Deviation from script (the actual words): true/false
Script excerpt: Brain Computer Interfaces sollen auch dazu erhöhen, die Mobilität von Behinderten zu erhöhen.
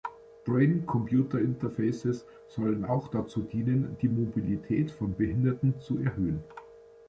true